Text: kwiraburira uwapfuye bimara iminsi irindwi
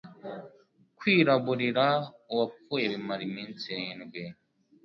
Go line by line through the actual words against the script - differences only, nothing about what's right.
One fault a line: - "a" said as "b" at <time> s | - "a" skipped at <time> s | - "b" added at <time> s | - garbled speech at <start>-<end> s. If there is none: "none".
none